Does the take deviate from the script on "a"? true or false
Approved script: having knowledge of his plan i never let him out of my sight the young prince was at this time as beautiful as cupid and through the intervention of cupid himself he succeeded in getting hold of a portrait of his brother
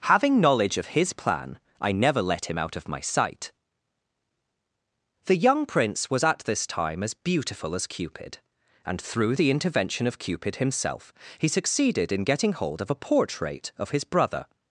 false